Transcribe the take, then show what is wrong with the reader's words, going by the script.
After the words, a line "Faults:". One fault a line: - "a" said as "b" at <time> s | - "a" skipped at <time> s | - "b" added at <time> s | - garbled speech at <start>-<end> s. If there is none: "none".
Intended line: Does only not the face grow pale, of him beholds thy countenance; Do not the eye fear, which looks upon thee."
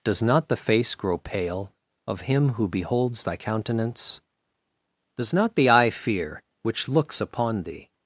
Does not the face grow pale, of him who beholds thy countenance; Does not the eye fear, which looks upon thee."
Faults:
- "only" skipped at 0.2 s
- "who" added at 2.5 s
- "Do" said as "Does" at 5.2 s